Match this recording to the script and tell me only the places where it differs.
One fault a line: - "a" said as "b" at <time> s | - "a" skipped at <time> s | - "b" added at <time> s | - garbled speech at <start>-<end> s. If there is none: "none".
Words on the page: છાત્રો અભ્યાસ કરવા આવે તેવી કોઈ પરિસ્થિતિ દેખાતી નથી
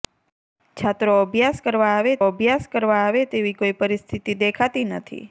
- "અભ્યાસ કરવા આવે" added at 2.2 s